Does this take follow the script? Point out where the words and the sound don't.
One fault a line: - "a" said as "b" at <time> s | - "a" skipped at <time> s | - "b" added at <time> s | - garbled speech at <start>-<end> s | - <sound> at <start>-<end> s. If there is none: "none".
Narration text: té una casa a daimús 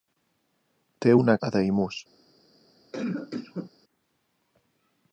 - "casa" skipped at 1.3 s
- cough at 2.9-3.7 s